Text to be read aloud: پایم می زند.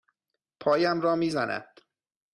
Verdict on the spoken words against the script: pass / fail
fail